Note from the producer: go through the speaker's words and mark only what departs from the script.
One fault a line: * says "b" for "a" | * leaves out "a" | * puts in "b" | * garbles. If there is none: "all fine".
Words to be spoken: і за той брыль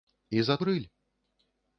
* leaves out "той"